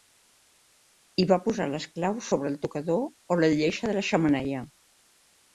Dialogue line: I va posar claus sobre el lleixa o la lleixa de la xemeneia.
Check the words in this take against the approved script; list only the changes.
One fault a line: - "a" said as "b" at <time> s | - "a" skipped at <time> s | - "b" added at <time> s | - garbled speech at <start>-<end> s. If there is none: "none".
- "les" added at 1.7 s
- "lleixa" said as "tocador" at 2.7 s